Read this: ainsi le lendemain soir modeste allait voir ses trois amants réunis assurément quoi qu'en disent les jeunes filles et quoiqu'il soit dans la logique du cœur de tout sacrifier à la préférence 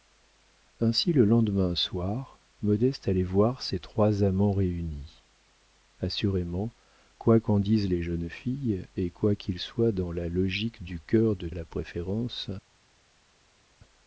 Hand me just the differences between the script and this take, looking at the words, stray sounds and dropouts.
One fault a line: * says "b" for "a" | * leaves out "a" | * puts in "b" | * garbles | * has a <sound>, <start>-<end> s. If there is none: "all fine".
* leaves out "tout sacrifier"